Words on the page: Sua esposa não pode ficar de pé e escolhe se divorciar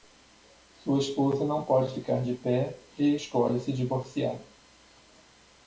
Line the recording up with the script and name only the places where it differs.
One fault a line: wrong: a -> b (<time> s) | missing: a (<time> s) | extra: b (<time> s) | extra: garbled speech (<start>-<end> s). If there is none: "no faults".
no faults